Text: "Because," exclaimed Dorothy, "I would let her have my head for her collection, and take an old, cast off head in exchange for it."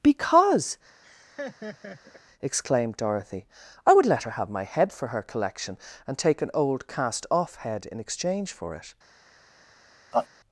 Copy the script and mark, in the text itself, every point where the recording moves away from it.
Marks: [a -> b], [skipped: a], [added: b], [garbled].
"Because," exclaimed Dorothy, "I would let her have my head for her collection, and take an old, cast off head in exchange for it."